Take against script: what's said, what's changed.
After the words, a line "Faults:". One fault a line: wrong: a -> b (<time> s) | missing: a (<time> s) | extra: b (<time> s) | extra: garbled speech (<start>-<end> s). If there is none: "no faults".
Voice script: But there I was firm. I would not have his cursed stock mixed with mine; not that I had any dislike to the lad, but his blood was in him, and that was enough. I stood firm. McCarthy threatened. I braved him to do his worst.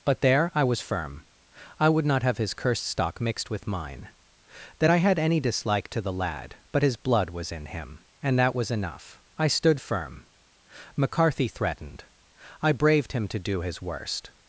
But there I was firm. I would not have his cursed stock mixed with mine; that I had any dislike to the lad, but his blood was in him, and that was enough. I stood firm. McCarthy threatened. I braved him to do his worst.
Faults:
missing: not (4.1 s)